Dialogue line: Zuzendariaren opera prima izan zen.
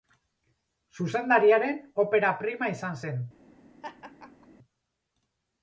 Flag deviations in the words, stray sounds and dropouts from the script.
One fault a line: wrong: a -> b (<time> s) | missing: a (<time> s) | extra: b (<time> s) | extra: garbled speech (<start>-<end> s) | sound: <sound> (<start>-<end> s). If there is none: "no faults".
sound: laugh (3.8-4.5 s)